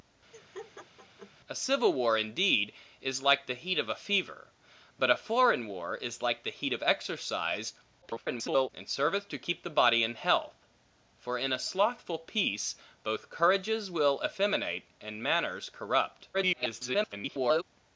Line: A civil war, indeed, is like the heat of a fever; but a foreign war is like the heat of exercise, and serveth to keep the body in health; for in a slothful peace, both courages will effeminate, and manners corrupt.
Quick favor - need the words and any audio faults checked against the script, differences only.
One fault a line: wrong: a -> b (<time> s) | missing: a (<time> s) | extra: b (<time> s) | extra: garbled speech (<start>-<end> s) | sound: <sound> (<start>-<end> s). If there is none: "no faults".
sound: laugh (0.3-1.3 s)
extra: garbled speech (8.0-8.7 s)
extra: garbled speech (16.3-17.6 s)